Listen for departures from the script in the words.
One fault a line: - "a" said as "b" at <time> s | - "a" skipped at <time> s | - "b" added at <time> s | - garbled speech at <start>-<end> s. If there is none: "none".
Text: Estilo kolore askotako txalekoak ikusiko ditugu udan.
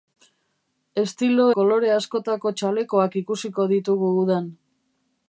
none